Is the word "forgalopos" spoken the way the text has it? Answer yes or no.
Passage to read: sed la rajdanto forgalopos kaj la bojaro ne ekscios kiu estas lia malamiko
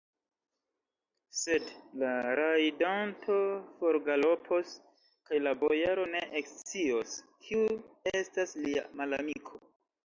yes